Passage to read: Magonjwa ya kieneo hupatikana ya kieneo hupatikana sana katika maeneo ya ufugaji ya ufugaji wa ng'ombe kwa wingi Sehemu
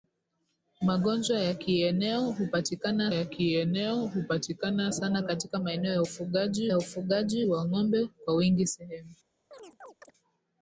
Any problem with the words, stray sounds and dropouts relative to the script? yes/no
yes